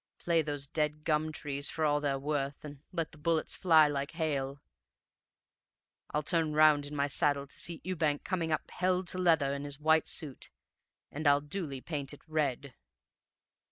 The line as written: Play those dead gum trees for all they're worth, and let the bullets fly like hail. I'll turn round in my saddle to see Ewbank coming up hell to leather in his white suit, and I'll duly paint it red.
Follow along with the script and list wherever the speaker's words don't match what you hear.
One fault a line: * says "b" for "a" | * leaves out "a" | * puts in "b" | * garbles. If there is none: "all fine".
all fine